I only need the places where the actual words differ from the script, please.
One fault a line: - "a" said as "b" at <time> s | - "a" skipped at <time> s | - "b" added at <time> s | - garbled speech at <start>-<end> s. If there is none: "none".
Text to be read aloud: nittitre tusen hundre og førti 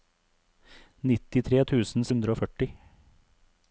none